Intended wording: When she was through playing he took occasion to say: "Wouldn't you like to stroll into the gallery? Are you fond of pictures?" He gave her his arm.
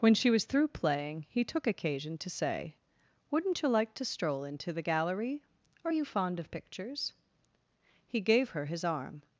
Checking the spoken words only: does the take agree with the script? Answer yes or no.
yes